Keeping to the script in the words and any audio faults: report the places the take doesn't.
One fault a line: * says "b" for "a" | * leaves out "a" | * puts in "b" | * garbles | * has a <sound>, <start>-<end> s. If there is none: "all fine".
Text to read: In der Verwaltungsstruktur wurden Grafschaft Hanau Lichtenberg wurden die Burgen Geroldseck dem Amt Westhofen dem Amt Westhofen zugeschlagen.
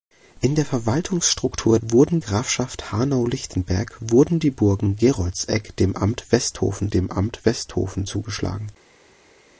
all fine